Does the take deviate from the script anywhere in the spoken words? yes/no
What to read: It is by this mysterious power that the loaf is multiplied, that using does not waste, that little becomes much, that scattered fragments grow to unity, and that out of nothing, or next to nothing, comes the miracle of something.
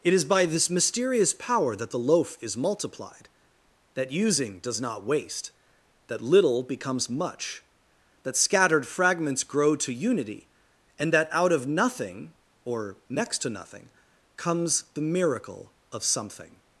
no